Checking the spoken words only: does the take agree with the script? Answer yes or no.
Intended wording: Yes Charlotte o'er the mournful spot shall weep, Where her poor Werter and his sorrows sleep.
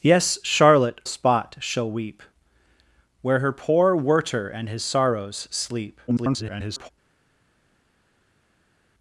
no